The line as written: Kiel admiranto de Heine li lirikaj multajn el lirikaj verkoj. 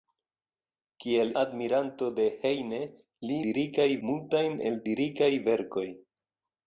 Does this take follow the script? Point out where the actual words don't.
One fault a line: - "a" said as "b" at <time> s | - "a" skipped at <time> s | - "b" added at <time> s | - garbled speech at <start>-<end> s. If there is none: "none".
none